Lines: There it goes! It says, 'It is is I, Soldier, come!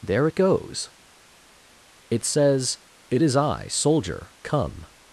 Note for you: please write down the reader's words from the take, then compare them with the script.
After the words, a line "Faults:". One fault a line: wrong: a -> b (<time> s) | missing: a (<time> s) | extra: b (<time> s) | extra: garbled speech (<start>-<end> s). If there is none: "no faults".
There it goes! It says, 'It is I, Soldier, come!
Faults:
missing: is (3.4 s)